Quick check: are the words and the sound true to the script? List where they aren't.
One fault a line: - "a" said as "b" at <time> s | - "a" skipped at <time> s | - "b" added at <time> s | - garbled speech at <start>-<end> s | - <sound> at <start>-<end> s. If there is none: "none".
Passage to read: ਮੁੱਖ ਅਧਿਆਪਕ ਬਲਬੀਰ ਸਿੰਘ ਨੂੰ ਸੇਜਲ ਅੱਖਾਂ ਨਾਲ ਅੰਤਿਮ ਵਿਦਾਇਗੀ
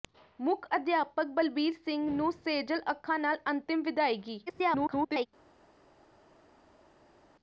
- garbled speech at 4.5-5.3 s